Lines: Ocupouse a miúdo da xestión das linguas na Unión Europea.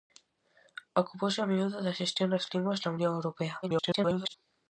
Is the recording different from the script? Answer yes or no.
yes